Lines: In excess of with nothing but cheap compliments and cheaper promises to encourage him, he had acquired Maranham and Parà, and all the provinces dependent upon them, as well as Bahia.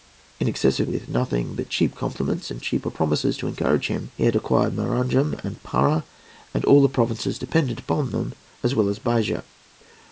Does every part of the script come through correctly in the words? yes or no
yes